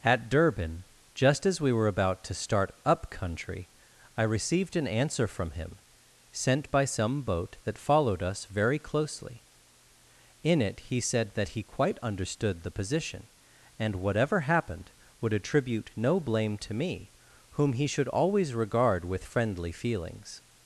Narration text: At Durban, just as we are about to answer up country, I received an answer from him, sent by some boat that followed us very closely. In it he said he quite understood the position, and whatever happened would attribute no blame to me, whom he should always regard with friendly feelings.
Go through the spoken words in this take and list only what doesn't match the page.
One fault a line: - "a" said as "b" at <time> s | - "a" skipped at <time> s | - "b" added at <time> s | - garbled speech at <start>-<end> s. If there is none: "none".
- "are" said as "were" at 1.7 s
- "answer" said as "start" at 2.3 s
- "that" added at 11.3 s